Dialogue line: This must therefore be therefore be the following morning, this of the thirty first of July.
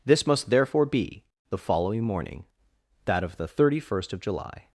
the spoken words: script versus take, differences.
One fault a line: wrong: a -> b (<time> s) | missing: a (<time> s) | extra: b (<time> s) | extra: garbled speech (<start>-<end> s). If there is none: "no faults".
missing: therefore be (1.2 s)
wrong: this -> that (3.0 s)